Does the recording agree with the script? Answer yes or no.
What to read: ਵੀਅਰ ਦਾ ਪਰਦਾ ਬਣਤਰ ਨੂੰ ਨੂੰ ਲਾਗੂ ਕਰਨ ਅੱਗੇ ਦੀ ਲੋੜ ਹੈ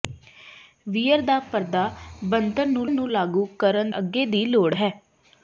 yes